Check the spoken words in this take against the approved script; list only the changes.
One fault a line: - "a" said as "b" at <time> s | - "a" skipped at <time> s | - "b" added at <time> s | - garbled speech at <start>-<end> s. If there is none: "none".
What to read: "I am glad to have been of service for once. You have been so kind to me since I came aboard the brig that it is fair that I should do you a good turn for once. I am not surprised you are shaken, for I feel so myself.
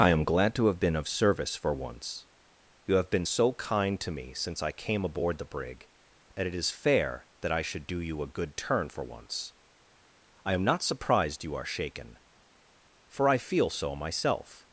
none